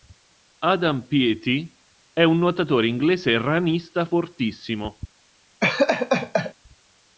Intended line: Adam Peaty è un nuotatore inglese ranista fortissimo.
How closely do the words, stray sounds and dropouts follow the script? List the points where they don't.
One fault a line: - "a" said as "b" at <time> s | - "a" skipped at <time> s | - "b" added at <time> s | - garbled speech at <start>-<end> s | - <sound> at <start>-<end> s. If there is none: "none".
- laugh at 5.6-6.5 s